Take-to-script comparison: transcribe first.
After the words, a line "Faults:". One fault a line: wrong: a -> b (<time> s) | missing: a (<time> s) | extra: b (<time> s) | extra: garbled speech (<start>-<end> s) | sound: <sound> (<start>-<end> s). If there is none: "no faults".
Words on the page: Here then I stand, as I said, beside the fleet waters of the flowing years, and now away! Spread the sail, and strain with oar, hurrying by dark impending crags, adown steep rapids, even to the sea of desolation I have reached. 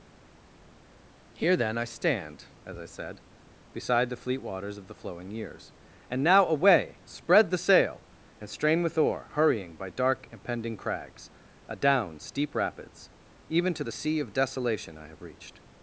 Here then I stand, as I said, beside the fleet waters of the flowing years, and now away! Spread the sail, and strain with oar, hurrying by dark impending crags, adown steep rapids, even to the sea of desolation I have reached.
Faults:
no faults